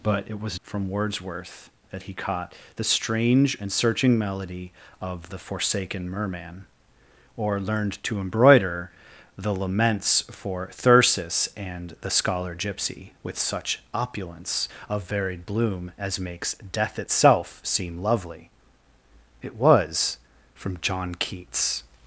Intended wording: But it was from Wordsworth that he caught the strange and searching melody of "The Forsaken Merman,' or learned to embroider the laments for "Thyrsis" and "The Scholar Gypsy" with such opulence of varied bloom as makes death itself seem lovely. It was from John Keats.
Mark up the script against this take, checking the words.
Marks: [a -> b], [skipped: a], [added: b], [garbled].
But it was from Wordsworth that he caught the strange and searching melody of "The Forsaken Merman,' or learned to embroider the laments for "Thyrsis" and "The Scholar Gypsy" with such opulence of varied bloom as makes death itself seem lovely. It was from John Keats.